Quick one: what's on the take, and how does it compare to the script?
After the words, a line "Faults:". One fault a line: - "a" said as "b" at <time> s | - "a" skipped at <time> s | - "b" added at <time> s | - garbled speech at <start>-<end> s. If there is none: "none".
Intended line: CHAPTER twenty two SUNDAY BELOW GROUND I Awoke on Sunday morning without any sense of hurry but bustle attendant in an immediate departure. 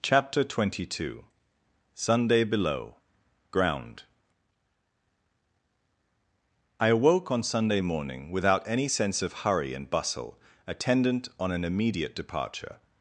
CHAPTER twenty two SUNDAY BELOW GROUND I Awoke on Sunday morning without any sense of hurry and bustle attendant on an immediate departure.
Faults:
- "but" said as "and" at 9.7 s
- "in" said as "on" at 11.4 s